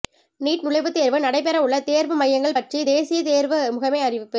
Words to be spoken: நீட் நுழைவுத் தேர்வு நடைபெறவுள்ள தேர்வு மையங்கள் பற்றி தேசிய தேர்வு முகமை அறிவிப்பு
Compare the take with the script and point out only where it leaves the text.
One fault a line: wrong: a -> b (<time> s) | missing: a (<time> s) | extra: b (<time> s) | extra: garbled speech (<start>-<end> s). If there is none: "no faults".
no faults